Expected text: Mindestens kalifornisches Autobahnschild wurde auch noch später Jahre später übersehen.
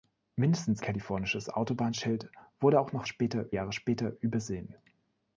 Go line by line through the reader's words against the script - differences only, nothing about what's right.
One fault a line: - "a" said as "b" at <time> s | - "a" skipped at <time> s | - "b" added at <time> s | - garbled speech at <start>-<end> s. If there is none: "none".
none